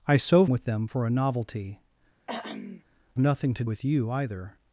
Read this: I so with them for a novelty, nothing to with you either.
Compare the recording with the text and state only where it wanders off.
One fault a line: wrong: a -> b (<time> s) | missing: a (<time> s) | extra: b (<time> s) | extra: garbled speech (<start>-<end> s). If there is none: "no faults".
no faults